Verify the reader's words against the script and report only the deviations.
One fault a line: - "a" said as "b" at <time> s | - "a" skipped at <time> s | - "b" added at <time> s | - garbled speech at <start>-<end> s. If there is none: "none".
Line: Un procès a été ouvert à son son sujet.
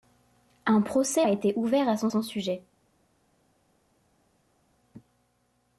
none